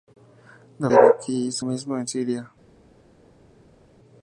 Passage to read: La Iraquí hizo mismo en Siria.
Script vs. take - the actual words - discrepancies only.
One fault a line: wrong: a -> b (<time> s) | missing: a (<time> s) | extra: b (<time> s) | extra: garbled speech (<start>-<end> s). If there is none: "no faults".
no faults